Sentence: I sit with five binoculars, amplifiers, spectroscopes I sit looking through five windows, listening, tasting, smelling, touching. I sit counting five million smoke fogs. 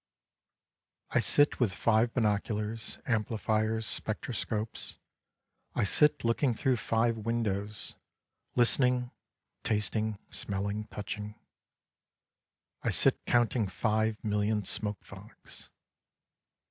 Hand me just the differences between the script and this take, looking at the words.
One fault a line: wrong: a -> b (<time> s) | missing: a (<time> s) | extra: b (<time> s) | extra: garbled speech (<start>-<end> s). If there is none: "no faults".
no faults